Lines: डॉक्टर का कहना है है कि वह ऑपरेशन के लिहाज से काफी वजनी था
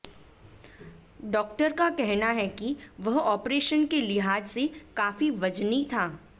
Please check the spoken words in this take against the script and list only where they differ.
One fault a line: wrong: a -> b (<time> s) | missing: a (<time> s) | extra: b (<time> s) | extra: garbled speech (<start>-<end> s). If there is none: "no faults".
missing: है (2.5 s)